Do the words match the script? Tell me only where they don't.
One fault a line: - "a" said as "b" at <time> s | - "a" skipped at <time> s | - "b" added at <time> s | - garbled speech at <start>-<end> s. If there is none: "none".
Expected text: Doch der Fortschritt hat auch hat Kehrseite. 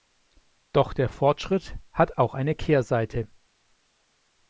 - "hat" said as "eine" at 2.3 s